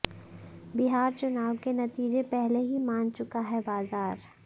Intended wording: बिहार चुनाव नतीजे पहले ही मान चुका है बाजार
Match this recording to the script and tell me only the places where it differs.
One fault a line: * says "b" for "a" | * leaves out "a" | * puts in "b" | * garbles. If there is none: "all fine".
* puts in "के"